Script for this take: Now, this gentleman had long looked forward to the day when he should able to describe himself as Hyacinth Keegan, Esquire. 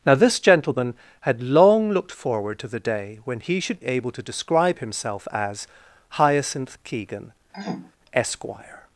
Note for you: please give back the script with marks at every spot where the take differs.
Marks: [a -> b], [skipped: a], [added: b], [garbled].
Now, this gentleman had long looked forward to the day when he should able to describe himself as Hyacinth Keegan, Esquire.